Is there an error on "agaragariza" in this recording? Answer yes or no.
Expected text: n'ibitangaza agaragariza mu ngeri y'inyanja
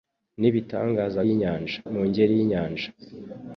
yes